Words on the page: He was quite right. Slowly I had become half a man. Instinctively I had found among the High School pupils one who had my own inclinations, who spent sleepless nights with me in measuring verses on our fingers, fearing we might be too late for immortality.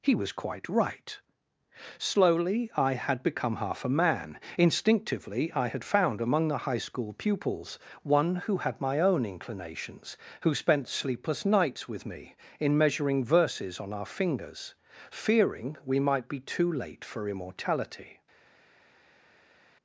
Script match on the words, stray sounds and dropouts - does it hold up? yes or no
yes